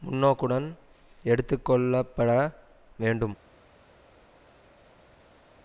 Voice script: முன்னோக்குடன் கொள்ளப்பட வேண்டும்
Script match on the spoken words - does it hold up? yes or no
no